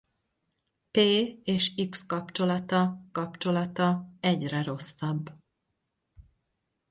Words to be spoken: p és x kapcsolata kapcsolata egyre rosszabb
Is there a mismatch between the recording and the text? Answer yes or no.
no